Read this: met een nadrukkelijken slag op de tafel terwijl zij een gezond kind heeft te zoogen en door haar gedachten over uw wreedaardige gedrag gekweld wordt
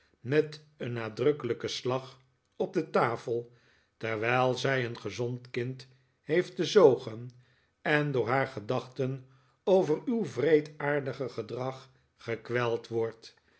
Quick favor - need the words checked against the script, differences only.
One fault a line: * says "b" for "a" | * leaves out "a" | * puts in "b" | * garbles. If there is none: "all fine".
all fine